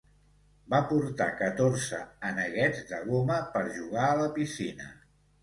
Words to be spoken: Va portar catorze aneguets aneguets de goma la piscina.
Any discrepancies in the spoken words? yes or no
yes